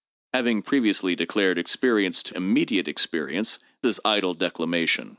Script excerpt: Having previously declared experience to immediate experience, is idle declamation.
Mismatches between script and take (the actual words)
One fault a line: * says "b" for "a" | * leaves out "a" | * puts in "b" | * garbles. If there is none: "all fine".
all fine